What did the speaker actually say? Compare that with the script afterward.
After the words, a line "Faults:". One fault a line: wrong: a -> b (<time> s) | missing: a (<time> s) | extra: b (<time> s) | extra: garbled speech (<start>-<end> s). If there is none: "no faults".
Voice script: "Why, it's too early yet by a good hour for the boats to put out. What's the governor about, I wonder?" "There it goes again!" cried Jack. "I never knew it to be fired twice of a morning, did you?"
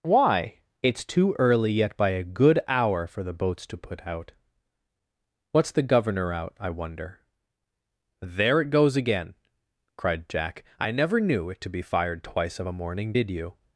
"Why, it's too early yet by a good hour for the boats to put out. What's the governor out, I wonder?" "There it goes again!" cried Jack. "I never knew it to be fired twice of a morning, did you?"
Faults:
wrong: about -> out (6.3 s)